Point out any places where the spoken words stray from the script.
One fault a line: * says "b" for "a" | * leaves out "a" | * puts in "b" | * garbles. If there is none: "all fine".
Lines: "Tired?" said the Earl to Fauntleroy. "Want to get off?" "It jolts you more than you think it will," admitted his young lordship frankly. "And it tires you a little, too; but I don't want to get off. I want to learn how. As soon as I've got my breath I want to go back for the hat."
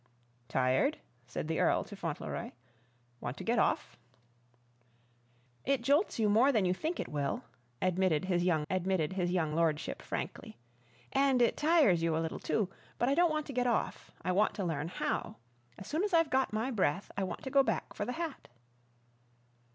* puts in "admitted his young"